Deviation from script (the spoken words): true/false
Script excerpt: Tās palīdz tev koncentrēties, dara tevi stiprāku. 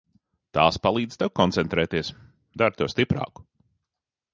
false